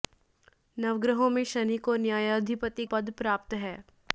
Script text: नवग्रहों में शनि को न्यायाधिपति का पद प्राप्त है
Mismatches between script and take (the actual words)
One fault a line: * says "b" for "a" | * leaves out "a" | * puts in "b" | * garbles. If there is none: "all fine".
* leaves out "का"